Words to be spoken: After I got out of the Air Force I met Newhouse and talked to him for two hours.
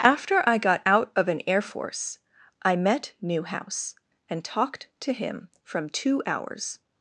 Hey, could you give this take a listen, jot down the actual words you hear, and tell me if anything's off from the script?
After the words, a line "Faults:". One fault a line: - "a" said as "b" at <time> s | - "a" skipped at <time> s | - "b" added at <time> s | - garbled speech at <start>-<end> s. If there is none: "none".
After I got out of an Air Force I met Newhouse and talked to him from two hours.
Faults:
- "the" said as "an" at 1.3 s
- "for" said as "from" at 5.6 s